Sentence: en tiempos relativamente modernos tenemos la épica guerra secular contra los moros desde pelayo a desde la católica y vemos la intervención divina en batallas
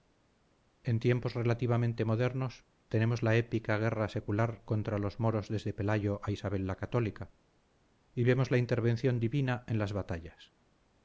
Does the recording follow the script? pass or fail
fail